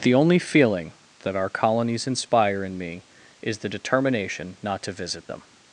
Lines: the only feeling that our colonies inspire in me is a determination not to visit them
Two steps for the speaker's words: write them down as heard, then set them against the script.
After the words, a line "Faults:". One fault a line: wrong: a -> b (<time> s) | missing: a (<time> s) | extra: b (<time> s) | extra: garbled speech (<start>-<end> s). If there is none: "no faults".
the only feeling that our colonies inspire in me is the determination not to visit them
Faults:
wrong: a -> the (3.6 s)